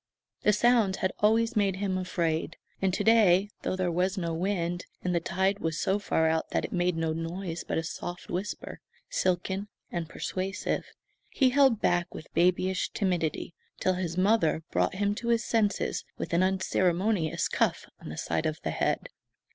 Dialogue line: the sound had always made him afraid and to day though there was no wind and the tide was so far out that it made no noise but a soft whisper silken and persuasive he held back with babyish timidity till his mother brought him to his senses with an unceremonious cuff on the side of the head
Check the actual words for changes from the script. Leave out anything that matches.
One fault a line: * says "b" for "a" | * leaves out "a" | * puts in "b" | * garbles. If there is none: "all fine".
all fine